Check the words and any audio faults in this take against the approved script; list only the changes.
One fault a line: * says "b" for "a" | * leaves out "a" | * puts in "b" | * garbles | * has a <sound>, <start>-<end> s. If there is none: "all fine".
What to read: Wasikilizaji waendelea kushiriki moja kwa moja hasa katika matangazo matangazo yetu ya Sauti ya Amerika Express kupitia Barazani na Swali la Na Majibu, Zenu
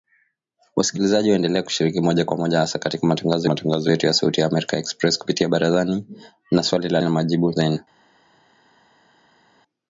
all fine